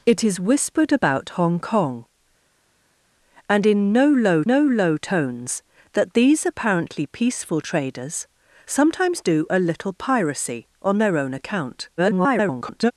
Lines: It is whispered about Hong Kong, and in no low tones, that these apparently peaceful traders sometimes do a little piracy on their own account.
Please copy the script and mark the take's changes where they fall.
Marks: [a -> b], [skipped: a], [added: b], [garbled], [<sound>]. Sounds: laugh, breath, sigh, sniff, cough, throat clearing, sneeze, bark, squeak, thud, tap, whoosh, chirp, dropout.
It is whispered about Hong Kong, and in no low [added: no low] tones, that these apparently peaceful traders sometimes do a little piracy on their own account. [garbled]